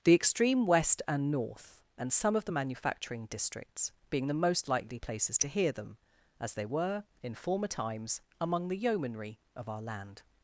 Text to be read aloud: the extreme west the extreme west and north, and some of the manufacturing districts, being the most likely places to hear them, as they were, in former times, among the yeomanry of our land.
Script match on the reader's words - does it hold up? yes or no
no